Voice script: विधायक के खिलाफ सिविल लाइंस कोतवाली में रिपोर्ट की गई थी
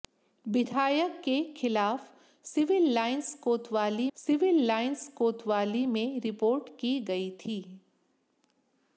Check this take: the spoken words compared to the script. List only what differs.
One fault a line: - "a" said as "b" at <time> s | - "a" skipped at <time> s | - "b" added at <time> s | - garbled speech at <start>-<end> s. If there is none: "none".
- "सिविल लाइंस कोतवाली" added at 4.2 s